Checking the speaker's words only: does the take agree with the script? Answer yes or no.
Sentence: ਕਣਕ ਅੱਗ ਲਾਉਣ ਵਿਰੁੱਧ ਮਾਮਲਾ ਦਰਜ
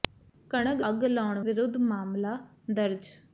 yes